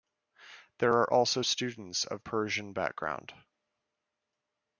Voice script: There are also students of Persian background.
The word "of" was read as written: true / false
true